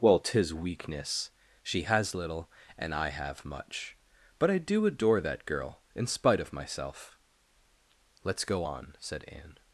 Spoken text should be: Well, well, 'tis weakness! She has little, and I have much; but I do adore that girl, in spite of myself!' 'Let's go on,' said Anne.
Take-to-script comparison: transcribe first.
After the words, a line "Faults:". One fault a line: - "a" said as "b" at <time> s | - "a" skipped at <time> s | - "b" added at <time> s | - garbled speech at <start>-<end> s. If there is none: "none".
Well, 'tis weakness! She has little, and I have much; but I do adore that girl, in spite of myself!' 'Let's go on,' said Anne.
Faults:
- "well" skipped at 0.2 s